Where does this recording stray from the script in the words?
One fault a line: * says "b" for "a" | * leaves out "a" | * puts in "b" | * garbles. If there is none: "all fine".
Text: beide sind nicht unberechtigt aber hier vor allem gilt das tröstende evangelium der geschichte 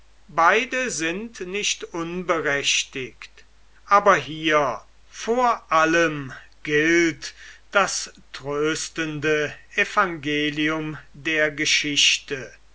all fine